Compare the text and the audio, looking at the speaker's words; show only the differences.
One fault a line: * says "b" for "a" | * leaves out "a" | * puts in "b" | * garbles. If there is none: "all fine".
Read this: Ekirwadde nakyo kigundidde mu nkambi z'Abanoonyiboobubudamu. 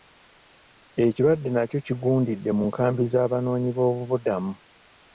all fine